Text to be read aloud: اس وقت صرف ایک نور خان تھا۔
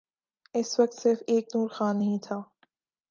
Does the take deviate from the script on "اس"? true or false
false